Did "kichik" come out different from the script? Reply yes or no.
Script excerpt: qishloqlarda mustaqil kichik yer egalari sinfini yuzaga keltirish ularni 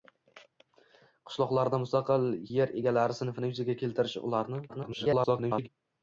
yes